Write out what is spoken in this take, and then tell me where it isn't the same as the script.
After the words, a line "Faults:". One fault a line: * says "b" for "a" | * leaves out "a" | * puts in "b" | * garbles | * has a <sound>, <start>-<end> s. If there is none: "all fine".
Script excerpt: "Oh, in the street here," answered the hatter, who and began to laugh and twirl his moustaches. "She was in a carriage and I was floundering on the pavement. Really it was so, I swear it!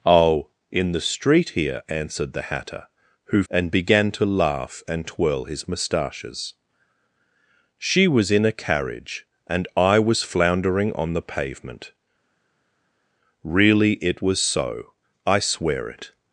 "Oh, in the street here," answered the hatter, who and began to laugh and twirl his moustaches. "She was in a carriage and I was floundering on the pavement. Really it was so, I swear it!
Faults:
all fine